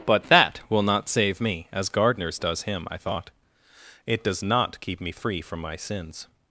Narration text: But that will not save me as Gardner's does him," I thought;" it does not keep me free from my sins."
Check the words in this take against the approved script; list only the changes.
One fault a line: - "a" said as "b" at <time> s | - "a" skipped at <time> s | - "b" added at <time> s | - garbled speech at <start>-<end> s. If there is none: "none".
none